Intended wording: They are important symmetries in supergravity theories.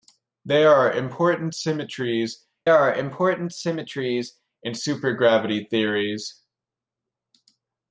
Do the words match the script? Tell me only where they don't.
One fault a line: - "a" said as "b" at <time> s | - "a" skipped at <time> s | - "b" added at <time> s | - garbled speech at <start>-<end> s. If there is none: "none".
- "are important symmetries" added at 2.7 s